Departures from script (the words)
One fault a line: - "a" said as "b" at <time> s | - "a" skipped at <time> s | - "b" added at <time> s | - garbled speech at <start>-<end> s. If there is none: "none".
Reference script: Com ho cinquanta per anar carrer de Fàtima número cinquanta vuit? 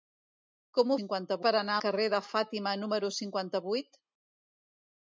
none